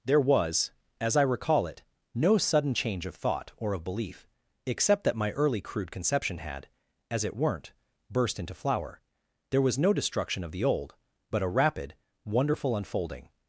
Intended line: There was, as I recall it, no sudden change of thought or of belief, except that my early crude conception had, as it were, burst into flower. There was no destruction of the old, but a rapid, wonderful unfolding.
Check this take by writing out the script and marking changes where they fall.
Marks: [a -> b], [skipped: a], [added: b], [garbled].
There was, as I recall it, no sudden change of thought or of belief, except that my early crude conception had, as it [were, -> weren't] burst into flower. There was no destruction of the old, but a rapid, wonderful unfolding.